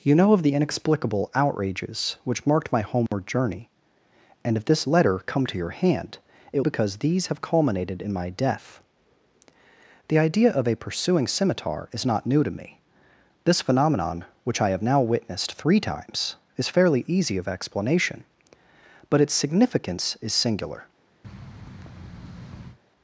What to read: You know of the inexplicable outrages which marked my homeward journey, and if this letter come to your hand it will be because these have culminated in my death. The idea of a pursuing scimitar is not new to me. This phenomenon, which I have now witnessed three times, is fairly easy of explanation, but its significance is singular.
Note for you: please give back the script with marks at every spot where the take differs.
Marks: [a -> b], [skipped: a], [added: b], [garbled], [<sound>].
You know of the inexplicable outrages which marked my homeward [dropout] journey, and if this letter come to your hand it [skipped: will be] because these have culminated in my death. The idea of a pursuing scimitar is not new to me. This phenomenon, which I have now witnessed three times, is fairly easy of explanation, but its significance is singular. [thud]